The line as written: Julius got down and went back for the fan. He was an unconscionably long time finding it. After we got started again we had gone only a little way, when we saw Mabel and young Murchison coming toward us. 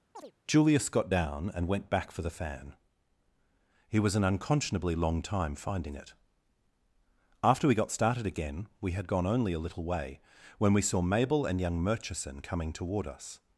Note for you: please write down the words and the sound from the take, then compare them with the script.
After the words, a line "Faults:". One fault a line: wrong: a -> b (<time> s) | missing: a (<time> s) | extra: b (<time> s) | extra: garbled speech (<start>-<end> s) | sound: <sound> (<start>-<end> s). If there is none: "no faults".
Julius got down and went back for the fan. He was an unconscionably long time finding it. After we got started again we had gone only a little way, when we saw Mabel and young Murchison coming toward us.
Faults:
sound: chirp (0.1-0.3 s)